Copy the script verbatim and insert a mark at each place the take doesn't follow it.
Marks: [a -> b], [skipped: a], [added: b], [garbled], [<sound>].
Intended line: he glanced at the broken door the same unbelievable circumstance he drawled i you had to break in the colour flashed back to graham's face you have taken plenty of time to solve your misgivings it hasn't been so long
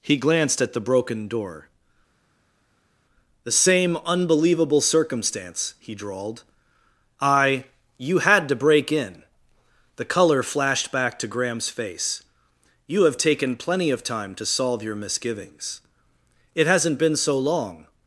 he glanced at the broken door the same unbelievable circumstance he drawled i you had to break in the colour flashed back to graham's face you have taken plenty of time to solve your misgivings it hasn't been so long